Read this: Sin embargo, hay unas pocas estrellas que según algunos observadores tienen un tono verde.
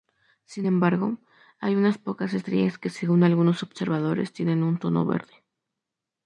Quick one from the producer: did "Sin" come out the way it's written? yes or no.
yes